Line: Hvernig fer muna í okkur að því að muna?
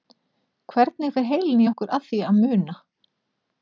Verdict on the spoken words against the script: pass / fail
fail